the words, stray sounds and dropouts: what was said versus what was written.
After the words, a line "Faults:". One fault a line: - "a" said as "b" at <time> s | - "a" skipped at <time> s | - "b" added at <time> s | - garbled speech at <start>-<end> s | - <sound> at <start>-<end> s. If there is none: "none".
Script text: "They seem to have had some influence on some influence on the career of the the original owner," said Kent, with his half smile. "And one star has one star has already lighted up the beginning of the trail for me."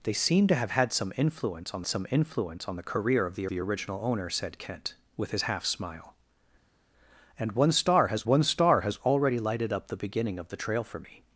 "They seem to have had some influence on some influence on the career of the the original owner," said Kent, with his half smile. "And one star has one star has already lighted up the beginning of the trail for me."
Faults:
none